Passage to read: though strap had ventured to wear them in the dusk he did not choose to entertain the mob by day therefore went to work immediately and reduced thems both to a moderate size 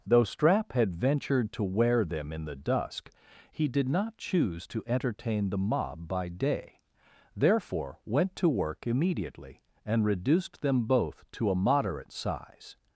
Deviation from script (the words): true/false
true